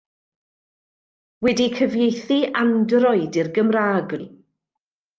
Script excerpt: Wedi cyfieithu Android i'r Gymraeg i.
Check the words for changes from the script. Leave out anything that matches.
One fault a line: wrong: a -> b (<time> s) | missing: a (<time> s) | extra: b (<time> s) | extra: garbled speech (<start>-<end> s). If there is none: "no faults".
no faults